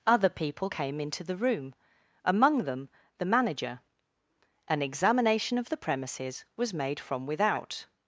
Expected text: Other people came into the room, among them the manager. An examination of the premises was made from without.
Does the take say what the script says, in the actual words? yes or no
yes